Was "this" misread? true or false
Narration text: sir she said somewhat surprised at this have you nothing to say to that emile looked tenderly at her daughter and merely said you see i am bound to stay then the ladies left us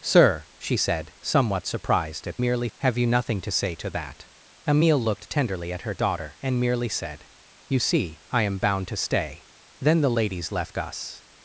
true